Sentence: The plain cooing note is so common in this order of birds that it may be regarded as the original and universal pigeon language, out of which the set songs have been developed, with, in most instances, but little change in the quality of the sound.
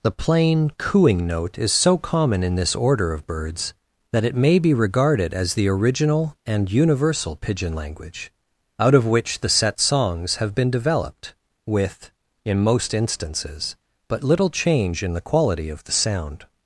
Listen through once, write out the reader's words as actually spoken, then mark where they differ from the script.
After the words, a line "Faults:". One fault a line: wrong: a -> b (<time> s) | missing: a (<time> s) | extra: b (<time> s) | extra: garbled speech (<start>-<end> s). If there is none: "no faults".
The plain cooing note is so common in this order of birds that it may be regarded as the original and universal pigeon language, out of which the set songs have been developed, with, in most instances, but little change in the quality of the sound.
Faults:
no faults